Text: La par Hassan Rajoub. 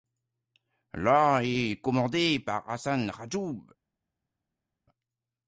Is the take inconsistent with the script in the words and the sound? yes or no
yes